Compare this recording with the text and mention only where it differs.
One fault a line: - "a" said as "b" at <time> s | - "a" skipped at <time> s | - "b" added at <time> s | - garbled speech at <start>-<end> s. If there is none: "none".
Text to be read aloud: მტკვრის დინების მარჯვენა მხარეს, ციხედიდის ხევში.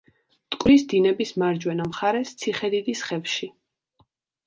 none